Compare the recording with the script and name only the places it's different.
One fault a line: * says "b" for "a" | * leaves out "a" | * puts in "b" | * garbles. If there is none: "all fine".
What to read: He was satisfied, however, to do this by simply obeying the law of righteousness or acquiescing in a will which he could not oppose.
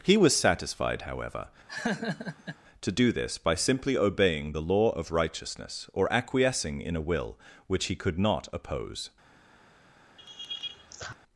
all fine